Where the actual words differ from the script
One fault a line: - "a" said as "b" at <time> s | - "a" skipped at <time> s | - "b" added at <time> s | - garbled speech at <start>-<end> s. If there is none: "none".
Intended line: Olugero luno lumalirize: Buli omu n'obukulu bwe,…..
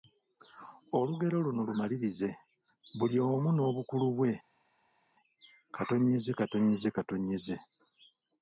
none